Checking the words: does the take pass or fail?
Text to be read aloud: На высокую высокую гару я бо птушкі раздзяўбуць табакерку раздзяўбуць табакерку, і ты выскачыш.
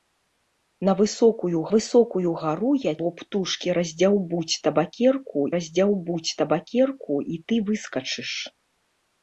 pass